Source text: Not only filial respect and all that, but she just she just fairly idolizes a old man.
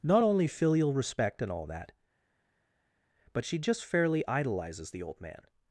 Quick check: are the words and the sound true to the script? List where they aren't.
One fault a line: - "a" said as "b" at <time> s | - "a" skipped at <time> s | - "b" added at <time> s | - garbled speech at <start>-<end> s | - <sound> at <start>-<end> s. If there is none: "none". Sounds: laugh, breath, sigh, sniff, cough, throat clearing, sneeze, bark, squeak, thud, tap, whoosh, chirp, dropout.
- "she just" skipped at 3.8 s
- "a" said as "the" at 4.9 s